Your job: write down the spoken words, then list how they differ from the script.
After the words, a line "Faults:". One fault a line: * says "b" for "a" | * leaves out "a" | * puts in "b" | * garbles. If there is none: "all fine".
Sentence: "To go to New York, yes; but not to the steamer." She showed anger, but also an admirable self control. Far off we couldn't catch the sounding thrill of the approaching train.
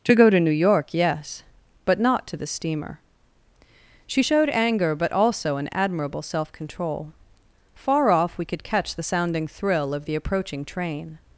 "To go to New York, yes; but not to the steamer." She showed anger, but also an admirable self control. Far off we could catch the sounding thrill of the approaching train.
Faults:
* says "could" for "couldn't"